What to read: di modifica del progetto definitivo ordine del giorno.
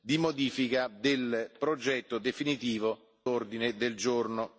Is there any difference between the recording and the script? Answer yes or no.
no